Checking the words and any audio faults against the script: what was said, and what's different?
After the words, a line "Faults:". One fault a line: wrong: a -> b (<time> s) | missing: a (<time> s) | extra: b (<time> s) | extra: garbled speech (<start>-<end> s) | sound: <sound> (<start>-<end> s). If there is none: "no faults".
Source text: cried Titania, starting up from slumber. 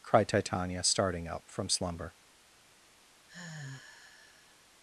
cried Titania, starting up from slumber.
Faults:
sound: sigh (3.3-4.7 s)